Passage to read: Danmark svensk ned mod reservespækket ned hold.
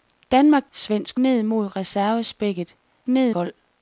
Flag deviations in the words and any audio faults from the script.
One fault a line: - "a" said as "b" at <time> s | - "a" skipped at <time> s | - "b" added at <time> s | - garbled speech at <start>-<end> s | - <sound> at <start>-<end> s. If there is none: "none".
none